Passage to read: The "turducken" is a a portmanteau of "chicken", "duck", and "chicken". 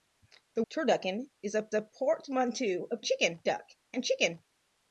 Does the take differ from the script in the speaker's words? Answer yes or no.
no